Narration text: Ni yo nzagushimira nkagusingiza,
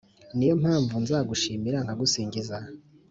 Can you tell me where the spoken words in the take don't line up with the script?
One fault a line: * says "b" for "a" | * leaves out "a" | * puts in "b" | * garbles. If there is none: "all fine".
* puts in "mpamvu"